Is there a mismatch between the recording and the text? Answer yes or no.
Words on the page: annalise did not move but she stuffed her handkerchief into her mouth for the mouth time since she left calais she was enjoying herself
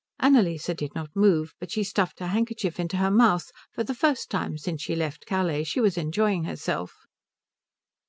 yes